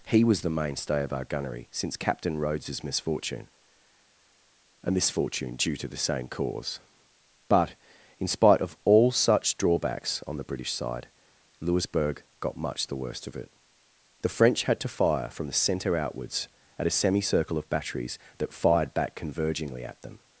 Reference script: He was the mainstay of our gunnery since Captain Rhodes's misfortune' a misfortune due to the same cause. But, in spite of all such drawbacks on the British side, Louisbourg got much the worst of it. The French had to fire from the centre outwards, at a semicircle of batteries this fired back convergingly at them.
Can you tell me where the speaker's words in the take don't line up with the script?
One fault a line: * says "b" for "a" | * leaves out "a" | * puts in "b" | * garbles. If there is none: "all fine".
* says "that" for "this"